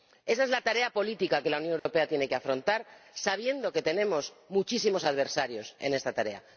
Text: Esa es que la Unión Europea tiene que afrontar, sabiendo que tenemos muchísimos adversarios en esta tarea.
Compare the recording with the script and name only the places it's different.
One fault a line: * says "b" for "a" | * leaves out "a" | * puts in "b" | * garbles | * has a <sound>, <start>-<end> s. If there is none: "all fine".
* puts in "la tarea política"
* has a dropout, 1.8-1.9 s